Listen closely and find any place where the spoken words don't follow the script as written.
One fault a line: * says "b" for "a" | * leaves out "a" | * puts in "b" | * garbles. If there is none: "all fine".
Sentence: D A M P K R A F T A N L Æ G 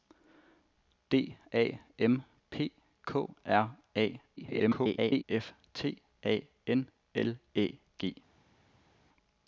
* garbles